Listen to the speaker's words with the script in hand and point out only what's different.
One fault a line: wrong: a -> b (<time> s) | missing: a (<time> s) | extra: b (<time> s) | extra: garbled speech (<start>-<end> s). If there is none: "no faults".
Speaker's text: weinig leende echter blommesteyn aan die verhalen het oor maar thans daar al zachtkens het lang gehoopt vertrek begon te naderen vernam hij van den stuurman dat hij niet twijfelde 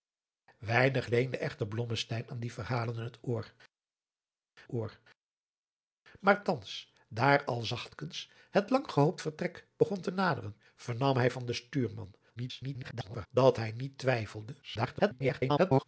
extra: oor (4.7 s)
extra: garbled speech (12.4-13.3 s)
extra: garbled speech (14.6-15.8 s)